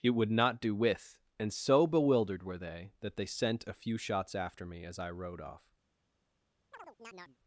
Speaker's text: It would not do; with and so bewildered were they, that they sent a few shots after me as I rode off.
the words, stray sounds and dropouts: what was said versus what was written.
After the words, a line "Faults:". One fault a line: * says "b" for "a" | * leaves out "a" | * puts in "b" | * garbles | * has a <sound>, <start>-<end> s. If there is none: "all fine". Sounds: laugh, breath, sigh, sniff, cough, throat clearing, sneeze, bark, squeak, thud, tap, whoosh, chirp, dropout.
It would not do; with and so bewildered were they, that they sent a few shots after me as I rode off.
Faults:
* has a chirp, 6.7-7.4 s